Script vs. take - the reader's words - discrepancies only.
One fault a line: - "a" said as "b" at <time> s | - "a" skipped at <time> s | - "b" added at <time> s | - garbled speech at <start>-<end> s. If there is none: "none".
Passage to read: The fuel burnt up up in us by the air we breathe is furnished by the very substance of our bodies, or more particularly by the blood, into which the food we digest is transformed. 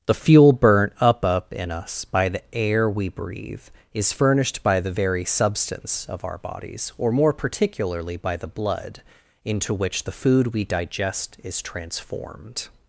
none